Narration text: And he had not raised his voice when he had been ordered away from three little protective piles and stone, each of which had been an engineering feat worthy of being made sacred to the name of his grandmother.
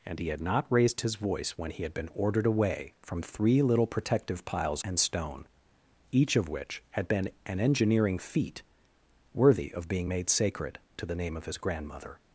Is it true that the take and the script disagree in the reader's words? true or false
false